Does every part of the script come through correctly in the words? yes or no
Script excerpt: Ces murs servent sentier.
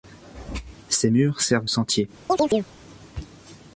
yes